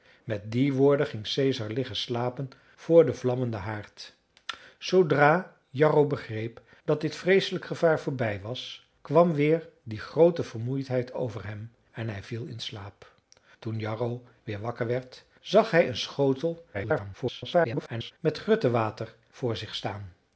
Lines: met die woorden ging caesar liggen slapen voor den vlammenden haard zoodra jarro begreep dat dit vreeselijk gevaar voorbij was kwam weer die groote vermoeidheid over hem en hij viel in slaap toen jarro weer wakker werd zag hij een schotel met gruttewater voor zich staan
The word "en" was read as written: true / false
true